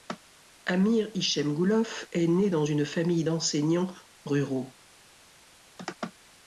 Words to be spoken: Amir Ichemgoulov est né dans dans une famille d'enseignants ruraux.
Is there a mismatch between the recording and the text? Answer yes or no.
yes